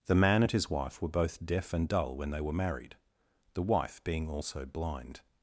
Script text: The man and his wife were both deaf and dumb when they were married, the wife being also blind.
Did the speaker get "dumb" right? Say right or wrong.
wrong